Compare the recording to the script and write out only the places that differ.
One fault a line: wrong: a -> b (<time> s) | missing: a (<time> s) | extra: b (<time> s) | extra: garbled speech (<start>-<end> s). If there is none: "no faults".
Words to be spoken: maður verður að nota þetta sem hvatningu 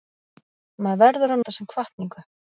missing: nota (1.4 s)